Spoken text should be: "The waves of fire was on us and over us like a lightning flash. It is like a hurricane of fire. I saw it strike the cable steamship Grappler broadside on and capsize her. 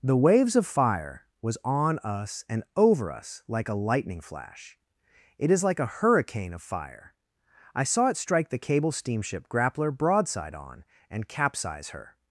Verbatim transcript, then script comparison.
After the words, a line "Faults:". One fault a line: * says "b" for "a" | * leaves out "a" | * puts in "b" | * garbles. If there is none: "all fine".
"The waves of fire was on us and over us like a lightning flash. It is like a hurricane of fire. I saw it strike the cable steamship Grappler broadside on and capsize her.
Faults:
all fine